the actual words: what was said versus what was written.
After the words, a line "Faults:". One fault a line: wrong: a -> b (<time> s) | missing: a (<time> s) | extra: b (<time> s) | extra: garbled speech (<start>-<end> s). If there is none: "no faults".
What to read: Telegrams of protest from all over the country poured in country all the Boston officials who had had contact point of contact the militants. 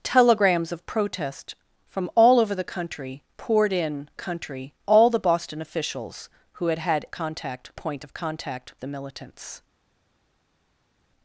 Telegrams of protest from all over the country poured in country all the Boston officials who had had contact point of contact the militants.
Faults:
no faults